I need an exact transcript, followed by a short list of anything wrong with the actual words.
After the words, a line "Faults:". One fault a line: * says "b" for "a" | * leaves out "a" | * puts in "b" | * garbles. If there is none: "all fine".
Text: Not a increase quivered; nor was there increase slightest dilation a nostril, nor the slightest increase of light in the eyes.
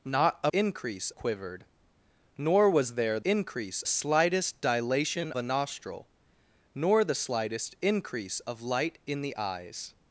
Not a increase quivered; nor was there increase slightest dilation a nostril, nor the slightest increase of light in the eyes.
Faults:
all fine